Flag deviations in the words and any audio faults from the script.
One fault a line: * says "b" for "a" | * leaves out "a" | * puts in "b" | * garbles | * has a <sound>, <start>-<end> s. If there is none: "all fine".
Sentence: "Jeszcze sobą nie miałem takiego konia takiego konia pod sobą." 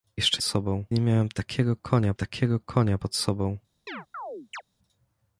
* has a chirp, 3.9-4.6 s